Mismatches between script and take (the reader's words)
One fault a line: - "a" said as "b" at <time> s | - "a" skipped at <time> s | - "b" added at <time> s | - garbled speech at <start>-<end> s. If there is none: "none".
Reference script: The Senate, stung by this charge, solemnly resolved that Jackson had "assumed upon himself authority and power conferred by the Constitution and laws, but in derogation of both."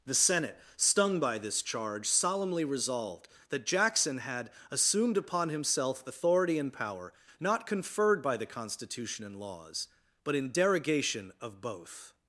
- "not" added at 7.4 s